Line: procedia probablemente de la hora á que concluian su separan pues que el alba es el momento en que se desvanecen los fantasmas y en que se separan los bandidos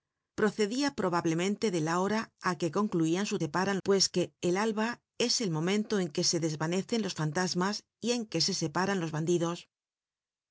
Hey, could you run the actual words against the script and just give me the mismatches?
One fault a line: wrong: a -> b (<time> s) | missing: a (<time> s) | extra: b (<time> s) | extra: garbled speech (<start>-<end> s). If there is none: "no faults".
no faults